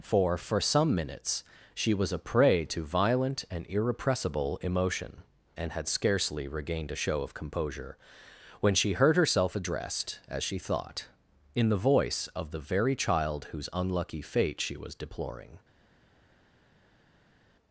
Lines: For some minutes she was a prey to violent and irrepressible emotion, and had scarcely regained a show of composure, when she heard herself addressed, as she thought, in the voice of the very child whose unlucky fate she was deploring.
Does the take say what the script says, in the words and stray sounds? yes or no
no